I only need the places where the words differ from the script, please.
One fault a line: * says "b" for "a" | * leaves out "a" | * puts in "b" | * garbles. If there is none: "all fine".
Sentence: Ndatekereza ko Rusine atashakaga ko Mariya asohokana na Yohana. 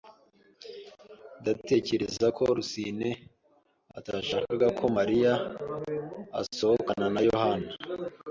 all fine